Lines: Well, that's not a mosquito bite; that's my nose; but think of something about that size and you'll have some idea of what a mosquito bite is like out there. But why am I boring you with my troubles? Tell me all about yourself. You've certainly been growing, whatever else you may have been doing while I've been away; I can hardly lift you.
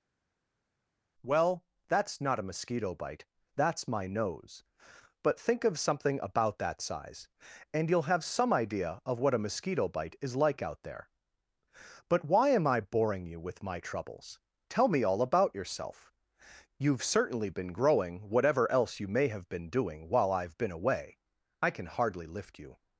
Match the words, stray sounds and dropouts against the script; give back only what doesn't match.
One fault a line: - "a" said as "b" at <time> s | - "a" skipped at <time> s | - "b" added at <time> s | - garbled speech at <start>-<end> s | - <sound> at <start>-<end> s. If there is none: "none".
none